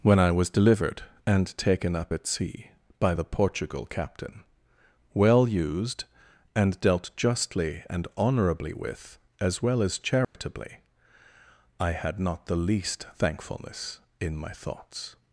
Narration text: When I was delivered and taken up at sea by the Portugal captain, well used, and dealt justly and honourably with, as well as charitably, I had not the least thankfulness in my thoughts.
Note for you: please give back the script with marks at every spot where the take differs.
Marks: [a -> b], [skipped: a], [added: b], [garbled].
When I was delivered and taken up at sea by the Portugal captain, well used, and dealt justly and honourably with, as well as charitably, I had not the least thankfulness in my thoughts.